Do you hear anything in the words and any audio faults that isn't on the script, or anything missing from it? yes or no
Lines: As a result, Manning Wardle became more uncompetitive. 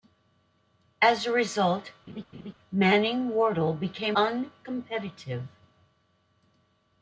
yes